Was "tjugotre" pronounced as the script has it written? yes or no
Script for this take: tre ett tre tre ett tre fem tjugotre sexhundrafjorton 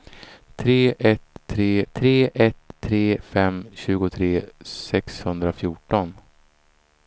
yes